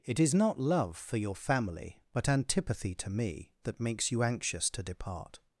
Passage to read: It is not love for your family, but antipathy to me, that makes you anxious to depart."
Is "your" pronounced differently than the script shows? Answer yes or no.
no